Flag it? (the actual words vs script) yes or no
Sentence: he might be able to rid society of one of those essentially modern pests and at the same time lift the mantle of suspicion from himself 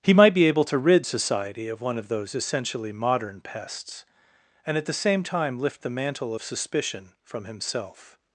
no